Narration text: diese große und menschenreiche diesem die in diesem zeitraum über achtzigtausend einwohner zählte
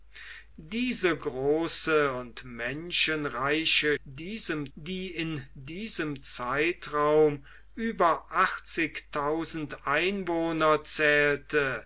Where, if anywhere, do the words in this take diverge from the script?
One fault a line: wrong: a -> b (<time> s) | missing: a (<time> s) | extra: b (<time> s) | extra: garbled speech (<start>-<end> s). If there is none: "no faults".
no faults